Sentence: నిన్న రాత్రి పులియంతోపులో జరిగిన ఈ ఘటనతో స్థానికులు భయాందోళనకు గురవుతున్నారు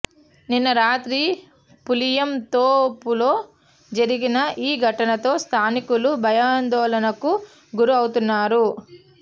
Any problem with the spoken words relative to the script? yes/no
no